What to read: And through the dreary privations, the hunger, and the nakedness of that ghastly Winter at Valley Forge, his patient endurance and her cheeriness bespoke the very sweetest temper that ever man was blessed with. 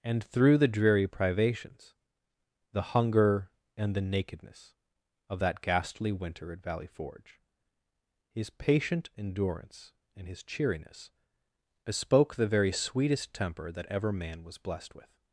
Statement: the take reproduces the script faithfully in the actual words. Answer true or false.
false